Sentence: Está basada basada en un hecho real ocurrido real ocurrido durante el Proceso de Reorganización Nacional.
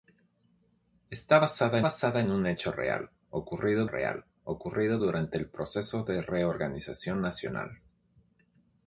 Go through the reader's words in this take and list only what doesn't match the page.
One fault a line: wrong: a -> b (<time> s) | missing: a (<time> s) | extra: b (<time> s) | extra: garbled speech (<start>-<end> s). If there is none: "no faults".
no faults